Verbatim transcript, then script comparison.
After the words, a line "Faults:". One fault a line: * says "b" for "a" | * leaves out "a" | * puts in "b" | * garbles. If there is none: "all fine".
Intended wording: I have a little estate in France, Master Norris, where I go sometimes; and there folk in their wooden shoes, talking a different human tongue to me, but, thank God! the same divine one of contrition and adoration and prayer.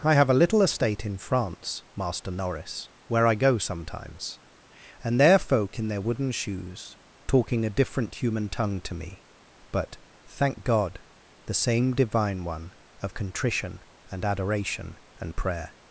I have a little estate in France, Master Norris, where I go sometimes; and there folk in their wooden shoes, talking a different human tongue to me, but, thank God! the same divine one of contrition and adoration and prayer.
Faults:
all fine